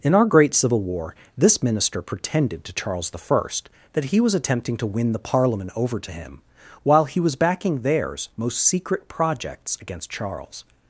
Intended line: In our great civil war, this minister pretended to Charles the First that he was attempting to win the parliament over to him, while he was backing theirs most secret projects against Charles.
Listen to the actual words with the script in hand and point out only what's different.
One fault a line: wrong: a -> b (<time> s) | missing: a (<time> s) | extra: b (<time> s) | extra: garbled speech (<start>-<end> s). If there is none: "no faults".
no faults